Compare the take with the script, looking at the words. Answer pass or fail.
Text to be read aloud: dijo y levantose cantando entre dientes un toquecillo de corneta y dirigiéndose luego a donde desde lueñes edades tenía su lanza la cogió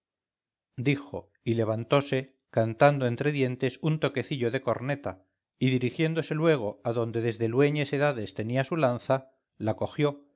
pass